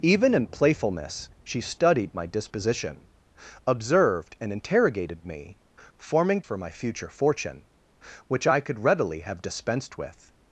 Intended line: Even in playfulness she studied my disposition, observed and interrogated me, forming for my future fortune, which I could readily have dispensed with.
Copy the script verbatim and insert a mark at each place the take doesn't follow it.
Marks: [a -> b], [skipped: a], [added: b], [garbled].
Even in playfulness she studied my disposition, observed and interrogated me, forming for my future fortune, which I could readily have dispensed with.